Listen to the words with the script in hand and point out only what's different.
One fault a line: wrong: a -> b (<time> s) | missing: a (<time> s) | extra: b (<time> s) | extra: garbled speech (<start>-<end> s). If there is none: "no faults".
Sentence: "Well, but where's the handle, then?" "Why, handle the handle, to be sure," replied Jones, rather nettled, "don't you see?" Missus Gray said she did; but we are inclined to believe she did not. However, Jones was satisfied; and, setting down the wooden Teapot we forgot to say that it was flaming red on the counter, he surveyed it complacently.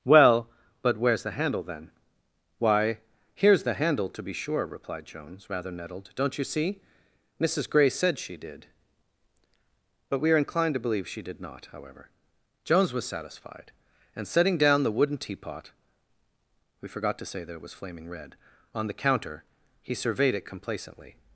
wrong: handle -> here's (3.4 s)